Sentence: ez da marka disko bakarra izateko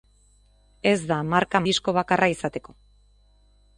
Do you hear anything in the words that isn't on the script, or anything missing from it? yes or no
no